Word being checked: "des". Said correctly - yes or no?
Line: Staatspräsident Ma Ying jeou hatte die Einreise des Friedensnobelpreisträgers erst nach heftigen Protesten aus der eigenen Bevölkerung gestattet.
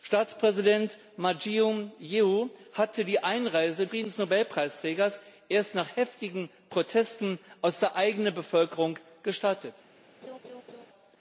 no